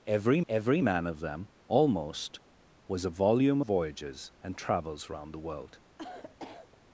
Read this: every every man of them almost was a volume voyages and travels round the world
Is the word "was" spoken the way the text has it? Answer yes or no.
yes